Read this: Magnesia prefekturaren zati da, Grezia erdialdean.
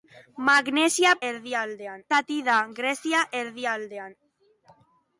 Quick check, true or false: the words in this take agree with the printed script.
false